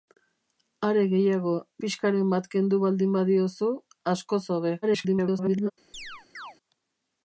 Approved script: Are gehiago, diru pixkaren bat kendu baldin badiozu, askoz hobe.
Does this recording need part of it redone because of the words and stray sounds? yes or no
yes